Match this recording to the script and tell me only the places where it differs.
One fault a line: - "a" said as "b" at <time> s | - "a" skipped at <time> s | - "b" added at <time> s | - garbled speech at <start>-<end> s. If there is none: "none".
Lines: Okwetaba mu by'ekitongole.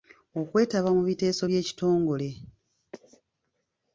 - "biteeso" added at 1.1 s